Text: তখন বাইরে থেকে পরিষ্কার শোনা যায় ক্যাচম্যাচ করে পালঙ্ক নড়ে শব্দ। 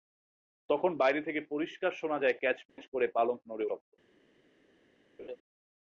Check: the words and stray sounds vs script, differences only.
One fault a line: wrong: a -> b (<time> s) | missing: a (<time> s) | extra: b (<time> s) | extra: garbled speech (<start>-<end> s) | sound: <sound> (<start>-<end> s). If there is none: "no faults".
sound: dropout (2.7-2.8 s)
sound: laugh (5.2-5.4 s)